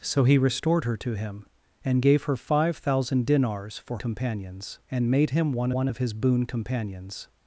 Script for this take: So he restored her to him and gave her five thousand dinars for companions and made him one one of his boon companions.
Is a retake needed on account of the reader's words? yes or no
no